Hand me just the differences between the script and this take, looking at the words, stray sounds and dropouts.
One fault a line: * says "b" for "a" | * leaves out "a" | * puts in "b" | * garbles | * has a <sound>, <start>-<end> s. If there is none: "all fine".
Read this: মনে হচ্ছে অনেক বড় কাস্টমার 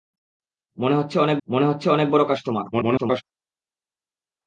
* puts in "মনে হচ্ছে অনেক"
* garbles